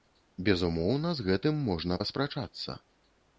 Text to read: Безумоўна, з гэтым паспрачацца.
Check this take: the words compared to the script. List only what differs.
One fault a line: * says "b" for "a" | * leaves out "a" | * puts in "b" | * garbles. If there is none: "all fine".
* puts in "можна"